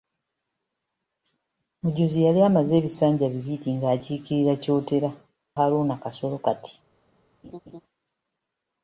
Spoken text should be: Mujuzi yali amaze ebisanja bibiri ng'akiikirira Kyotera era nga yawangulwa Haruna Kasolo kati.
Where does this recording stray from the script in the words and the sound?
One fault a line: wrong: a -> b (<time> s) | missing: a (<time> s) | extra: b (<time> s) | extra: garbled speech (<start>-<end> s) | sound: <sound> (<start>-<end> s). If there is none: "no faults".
missing: era nga yawangulwa (5.1 s)
sound: laugh (7.4-7.8 s)